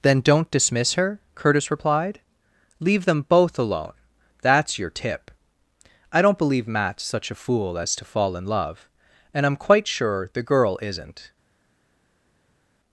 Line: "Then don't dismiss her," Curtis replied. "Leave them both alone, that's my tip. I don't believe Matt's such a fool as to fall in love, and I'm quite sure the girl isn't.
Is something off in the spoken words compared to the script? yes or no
yes